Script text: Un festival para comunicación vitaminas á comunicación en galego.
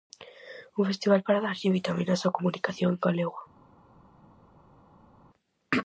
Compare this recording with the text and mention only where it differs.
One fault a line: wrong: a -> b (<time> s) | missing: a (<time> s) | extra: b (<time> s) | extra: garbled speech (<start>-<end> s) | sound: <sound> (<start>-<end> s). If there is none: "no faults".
wrong: comunicación -> darlle (1.4 s)